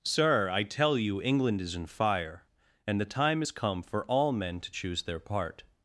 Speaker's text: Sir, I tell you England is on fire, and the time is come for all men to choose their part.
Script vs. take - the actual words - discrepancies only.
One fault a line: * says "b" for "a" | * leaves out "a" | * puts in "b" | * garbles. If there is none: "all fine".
* says "in" for "on"